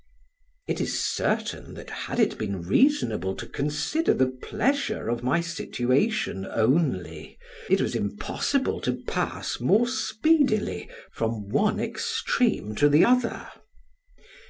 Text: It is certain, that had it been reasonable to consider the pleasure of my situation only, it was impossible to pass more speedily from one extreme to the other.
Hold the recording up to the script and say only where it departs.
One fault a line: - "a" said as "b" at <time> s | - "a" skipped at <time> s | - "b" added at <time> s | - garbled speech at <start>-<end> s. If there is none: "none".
none